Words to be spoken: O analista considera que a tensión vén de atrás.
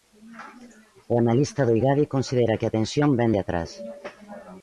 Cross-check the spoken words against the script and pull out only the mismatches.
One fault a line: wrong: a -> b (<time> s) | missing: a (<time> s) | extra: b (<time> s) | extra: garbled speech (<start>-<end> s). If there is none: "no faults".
extra: do Igadi (1.7 s)